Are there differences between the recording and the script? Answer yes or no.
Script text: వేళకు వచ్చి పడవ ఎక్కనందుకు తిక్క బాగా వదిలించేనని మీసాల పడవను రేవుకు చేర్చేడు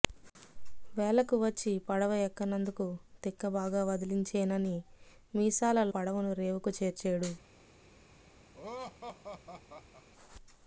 no